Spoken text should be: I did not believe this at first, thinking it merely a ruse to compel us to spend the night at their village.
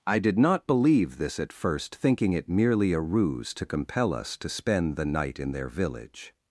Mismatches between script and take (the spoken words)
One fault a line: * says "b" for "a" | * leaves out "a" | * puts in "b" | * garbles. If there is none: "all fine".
* says "in" for "at"